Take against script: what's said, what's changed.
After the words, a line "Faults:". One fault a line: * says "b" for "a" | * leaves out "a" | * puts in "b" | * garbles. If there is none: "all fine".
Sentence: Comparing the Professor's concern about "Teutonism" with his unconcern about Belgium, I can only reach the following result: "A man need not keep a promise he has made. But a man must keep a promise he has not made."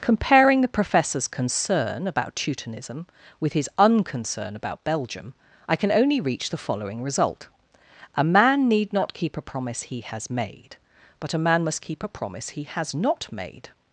Comparing the Professor's concern about "Teutonism" with his unconcern about Belgium, I can only reach the following result: "A man need not keep a promise he has made. But a man must keep a promise he has not made."
Faults:
all fine